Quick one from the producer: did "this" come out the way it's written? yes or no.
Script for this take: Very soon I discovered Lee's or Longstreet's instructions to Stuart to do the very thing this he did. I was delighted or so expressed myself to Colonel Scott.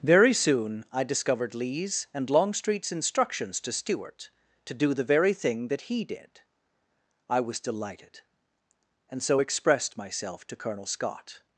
no